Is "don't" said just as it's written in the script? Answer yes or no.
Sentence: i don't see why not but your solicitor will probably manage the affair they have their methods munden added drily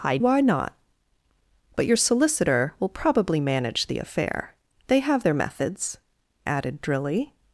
no